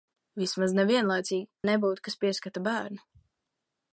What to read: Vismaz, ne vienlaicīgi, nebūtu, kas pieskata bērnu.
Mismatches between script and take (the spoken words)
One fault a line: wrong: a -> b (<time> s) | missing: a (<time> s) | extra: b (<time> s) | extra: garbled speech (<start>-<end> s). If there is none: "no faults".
no faults